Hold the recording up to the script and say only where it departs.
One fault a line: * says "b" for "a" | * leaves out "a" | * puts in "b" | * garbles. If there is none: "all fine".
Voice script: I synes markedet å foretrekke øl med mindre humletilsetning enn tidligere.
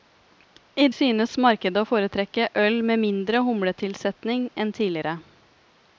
all fine